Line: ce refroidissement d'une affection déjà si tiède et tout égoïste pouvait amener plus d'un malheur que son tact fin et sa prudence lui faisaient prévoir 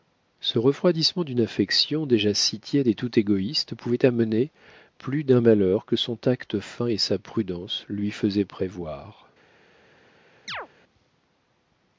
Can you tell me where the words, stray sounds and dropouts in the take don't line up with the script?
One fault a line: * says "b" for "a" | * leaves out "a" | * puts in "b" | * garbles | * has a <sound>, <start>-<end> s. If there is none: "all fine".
* has a chirp, 10.5-10.7 s